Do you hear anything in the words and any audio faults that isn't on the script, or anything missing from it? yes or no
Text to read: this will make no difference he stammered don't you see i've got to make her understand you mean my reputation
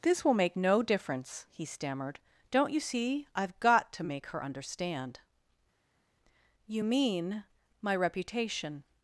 no